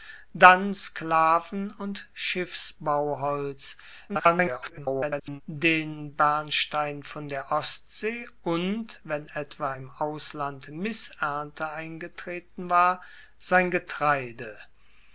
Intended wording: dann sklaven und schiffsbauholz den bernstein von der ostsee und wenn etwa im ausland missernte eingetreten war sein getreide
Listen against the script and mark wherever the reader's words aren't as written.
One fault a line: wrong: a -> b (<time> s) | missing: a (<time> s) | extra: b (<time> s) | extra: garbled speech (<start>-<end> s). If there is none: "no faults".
extra: garbled speech (4.1-5.4 s)